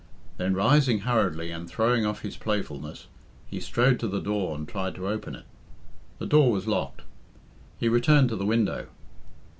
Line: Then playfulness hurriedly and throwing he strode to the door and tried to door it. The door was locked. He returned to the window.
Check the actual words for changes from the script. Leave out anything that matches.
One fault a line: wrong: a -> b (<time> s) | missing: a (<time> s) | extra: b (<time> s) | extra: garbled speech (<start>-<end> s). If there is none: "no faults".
wrong: playfulness -> rising (0.6 s)
extra: off his playfulness (2.1 s)
wrong: door -> open (5.1 s)